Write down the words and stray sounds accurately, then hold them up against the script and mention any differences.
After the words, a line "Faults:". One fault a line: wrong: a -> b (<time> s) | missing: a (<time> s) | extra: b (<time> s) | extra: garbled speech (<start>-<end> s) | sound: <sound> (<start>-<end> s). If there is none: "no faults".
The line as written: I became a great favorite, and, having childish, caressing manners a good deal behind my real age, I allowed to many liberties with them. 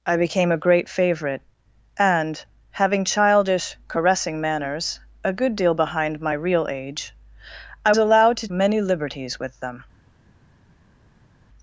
I became a great favorite, and, having childish, caressing manners a good deal behind my real age, I allowed to many liberties with them.
Faults:
no faults